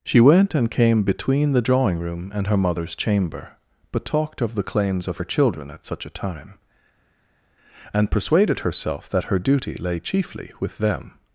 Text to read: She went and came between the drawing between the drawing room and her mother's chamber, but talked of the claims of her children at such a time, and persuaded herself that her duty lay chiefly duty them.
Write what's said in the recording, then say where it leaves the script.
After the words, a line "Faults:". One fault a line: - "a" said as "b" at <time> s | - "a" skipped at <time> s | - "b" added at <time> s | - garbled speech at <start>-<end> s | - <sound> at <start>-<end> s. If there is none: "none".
She went and came between the drawing room and her mother's chamber, but talked of the claims of her children at such a time, and persuaded herself that her duty lay chiefly with them.
Faults:
- "between the drawing" skipped at 2.0 s
- "duty" said as "with" at 10.6 s